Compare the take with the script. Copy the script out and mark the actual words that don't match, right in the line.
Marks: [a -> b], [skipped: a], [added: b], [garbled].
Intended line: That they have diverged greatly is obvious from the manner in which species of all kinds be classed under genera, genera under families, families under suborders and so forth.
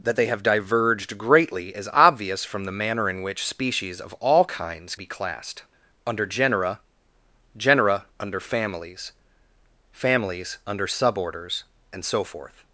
That they have diverged greatly is obvious from the manner in which species of all kinds be classed under genera, genera under families, families under suborders and so forth.